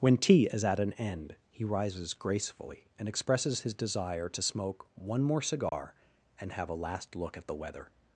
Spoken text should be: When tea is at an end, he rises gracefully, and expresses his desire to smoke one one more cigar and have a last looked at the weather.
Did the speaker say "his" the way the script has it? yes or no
yes